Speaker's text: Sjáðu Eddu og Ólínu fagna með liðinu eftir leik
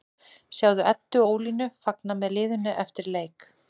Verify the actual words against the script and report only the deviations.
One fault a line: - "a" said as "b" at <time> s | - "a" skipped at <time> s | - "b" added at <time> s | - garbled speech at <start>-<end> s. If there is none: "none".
none